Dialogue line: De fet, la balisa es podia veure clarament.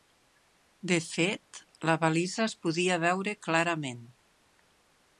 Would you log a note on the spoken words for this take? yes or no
no